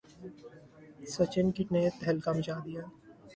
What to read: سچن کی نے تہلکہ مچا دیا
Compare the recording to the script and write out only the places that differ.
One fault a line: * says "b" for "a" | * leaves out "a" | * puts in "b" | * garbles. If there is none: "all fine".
all fine